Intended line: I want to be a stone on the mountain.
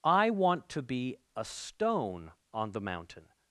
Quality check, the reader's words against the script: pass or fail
pass